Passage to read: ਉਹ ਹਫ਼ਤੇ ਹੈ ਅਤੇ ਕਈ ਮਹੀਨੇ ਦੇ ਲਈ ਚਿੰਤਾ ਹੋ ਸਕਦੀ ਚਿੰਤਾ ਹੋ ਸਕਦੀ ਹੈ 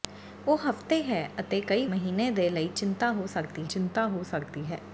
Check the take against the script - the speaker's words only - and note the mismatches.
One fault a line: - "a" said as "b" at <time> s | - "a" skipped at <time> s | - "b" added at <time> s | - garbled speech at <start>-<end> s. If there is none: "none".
none